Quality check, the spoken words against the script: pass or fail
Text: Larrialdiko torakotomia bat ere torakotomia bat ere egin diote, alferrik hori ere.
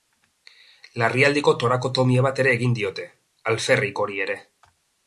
fail